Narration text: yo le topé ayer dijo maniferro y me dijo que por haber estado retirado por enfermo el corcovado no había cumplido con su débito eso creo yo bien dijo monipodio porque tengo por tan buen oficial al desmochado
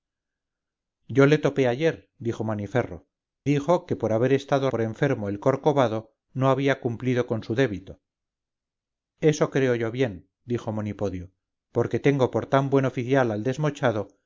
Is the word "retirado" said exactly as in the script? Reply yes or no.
no